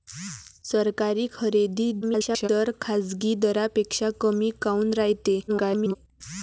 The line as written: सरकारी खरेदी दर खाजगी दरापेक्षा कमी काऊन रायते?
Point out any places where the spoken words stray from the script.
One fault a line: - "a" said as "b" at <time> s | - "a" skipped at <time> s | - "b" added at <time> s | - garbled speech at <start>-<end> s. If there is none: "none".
- garbled speech at 2.0-2.5 s
- garbled speech at 5.5-6.0 s